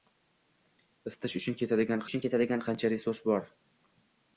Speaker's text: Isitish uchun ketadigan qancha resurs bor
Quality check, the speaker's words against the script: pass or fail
fail